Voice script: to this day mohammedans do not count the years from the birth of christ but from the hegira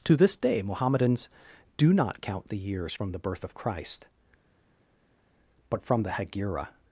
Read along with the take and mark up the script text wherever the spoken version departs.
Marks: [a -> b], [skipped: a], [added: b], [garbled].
to this day mohammedans do not count the years from the birth of christ but from the hegira